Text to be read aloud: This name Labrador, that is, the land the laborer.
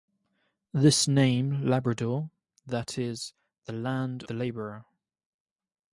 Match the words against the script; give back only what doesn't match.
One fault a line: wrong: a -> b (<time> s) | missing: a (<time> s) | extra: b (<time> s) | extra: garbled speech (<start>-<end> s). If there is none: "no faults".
no faults